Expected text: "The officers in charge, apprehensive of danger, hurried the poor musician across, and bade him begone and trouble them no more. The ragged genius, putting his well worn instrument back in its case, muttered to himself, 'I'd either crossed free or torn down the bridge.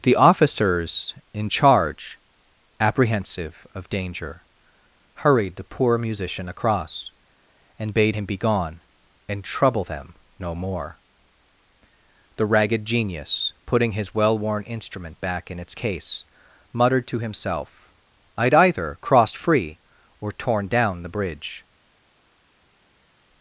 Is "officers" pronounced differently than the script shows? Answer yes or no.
no